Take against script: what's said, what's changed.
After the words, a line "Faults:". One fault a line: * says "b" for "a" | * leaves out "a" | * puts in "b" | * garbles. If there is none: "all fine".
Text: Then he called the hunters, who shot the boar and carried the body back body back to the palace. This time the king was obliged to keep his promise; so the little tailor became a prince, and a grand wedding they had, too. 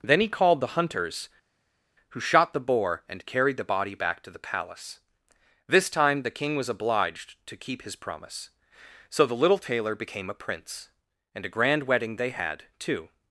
Then he called the hunters, who shot the boar and carried the body back to the palace. This time the king was obliged to keep his promise; so the little tailor became a prince, and a grand wedding they had, too.
Faults:
* leaves out "body back"